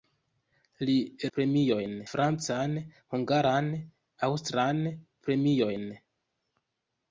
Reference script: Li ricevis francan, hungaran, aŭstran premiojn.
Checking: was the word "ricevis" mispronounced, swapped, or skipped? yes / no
yes